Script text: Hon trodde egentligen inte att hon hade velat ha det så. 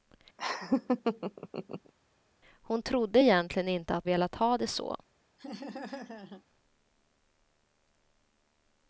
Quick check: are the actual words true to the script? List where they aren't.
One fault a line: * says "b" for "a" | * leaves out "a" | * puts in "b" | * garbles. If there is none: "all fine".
* leaves out "hon hade"